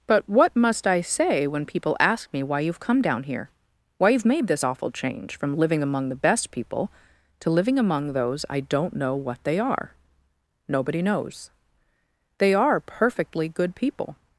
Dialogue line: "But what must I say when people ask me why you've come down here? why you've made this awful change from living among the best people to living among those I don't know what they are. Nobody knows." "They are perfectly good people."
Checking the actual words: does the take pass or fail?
pass